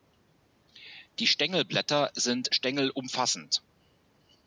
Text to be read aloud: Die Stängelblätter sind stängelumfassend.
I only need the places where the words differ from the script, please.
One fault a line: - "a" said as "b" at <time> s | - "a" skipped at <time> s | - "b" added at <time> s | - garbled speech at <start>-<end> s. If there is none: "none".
none